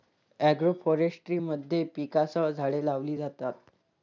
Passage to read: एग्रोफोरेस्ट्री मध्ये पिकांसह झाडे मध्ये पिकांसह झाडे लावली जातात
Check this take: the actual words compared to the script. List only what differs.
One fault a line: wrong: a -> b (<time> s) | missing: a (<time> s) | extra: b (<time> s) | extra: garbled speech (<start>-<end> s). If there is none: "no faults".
missing: मध्ये पिकांसह झाडे (2.8 s)